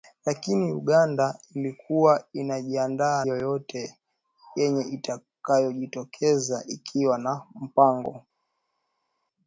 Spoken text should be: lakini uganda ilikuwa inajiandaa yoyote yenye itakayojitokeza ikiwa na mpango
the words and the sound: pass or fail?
pass